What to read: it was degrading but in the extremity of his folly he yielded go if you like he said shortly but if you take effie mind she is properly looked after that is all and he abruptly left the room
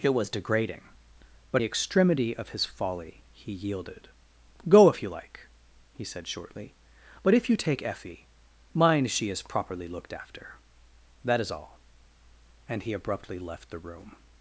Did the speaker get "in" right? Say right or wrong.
wrong